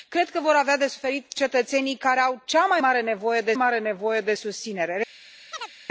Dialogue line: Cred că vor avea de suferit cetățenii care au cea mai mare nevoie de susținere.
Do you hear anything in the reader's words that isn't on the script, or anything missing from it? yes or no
yes